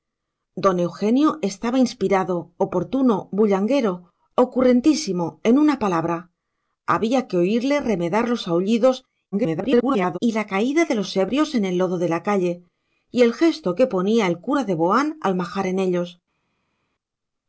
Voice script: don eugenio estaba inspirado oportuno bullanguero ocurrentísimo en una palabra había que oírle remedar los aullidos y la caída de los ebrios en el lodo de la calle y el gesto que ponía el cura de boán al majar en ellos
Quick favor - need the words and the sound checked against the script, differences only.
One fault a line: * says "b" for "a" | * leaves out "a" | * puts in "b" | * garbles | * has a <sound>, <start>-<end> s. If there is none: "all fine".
* garbles